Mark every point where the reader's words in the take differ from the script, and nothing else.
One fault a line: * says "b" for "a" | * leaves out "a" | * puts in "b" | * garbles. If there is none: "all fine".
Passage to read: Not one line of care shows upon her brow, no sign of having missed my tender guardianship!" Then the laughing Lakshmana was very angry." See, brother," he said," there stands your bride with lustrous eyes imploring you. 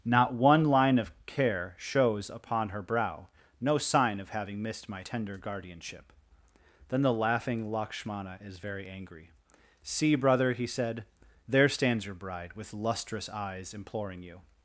* says "is" for "was"